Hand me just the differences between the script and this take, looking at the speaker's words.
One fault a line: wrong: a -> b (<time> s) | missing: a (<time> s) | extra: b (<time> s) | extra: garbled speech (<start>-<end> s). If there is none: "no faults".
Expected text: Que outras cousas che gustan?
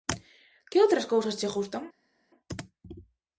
no faults